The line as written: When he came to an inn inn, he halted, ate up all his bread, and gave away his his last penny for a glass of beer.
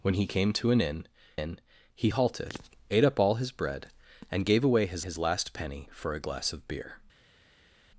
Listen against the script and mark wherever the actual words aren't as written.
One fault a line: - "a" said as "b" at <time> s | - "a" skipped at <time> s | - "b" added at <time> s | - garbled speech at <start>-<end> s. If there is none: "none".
none